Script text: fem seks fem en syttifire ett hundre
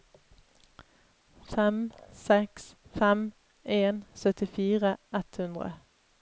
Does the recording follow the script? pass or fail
pass